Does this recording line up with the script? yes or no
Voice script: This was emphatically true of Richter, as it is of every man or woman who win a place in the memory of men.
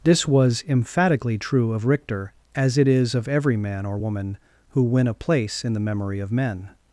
yes